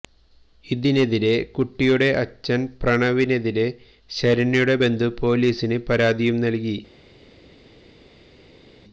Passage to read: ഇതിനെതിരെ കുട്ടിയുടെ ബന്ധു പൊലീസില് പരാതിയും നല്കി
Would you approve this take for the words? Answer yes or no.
no